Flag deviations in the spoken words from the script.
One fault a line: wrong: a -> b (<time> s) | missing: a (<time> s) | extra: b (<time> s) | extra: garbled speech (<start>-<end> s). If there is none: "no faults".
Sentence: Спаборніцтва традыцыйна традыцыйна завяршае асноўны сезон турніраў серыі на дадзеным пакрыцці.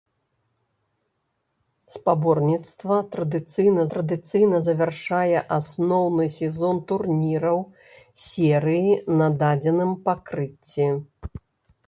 no faults